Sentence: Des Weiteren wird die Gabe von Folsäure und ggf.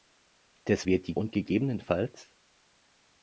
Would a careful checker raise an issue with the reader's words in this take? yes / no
yes